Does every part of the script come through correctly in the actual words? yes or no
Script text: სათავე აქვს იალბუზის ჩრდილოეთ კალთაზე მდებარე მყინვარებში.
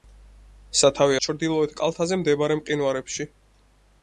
no